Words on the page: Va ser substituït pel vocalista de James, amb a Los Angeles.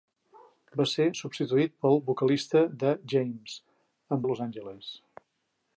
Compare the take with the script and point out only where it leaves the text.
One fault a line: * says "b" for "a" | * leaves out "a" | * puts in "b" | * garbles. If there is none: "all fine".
all fine